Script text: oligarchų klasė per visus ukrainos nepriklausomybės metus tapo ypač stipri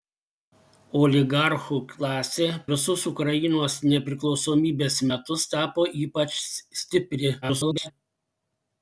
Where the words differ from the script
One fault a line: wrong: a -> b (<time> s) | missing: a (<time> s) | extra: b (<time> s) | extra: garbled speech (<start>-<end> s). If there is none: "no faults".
missing: per (2.5 s)
extra: garbled speech (7.4-7.9 s)